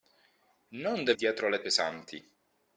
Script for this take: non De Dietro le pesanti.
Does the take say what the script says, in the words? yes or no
yes